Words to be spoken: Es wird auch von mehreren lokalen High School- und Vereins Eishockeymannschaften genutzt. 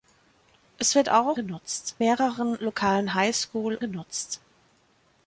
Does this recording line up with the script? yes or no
no